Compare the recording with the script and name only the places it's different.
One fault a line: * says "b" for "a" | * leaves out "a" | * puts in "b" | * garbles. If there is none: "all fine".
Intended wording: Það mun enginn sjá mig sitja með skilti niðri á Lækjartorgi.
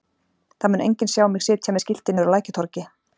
all fine